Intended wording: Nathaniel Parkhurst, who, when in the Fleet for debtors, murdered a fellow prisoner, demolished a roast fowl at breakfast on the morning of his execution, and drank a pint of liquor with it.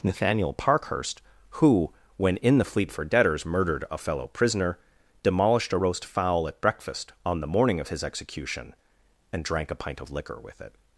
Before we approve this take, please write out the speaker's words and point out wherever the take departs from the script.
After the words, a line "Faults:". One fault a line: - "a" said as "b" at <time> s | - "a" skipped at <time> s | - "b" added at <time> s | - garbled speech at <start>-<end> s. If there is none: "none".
Nathaniel Parkhurst, who, when in the Fleet for debtors, murdered a fellow prisoner, demolished a roast fowl at breakfast on the morning of his execution, and drank a pint of liquor with it.
Faults:
none